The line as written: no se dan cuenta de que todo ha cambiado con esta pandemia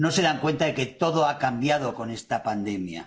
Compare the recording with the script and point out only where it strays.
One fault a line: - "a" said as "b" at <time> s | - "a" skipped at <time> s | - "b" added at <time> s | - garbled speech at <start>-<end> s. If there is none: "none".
none